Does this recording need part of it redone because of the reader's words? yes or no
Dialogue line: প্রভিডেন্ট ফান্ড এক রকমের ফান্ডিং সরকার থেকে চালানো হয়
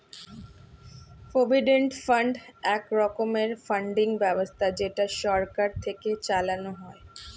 yes